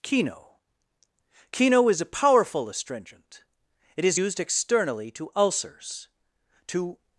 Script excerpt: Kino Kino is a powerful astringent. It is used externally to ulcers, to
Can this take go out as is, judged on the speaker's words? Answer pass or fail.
pass